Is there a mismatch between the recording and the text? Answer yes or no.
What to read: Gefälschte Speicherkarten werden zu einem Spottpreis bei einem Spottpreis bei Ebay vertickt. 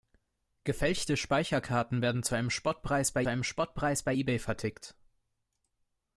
no